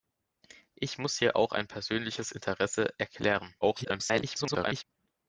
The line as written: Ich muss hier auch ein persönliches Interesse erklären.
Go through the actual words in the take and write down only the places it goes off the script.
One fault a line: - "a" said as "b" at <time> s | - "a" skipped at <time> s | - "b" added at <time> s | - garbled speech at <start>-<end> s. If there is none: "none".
- garbled speech at 3.6-4.8 s